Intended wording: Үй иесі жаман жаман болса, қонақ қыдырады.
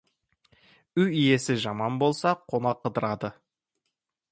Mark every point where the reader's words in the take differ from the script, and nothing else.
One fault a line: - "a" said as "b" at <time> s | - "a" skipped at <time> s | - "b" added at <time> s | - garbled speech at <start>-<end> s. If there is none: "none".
- "жаман" skipped at 2.0 s